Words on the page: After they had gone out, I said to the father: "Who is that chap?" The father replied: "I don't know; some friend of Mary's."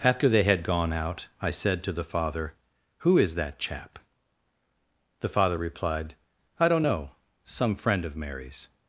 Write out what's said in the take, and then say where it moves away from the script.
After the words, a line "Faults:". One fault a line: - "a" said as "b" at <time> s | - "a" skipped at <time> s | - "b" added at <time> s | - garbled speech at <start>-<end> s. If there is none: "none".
After they had gone out, I said to the father: "Who is that chap?" The father replied: "I don't know; some friend of Mary's."
Faults:
none